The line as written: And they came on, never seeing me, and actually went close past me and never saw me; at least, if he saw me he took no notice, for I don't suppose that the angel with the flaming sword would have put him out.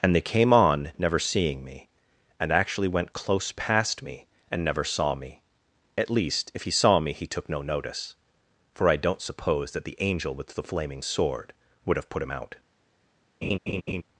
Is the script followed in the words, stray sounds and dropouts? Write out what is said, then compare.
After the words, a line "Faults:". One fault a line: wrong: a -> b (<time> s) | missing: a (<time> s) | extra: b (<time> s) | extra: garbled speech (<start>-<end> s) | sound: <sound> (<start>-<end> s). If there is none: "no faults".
And they came on, never seeing me, and actually went close past me and never saw me; at least, if he saw me he took no notice, for I don't suppose that the angel with the flaming sword would have put him out.
Faults:
sound: laugh (13.4-14.0 s)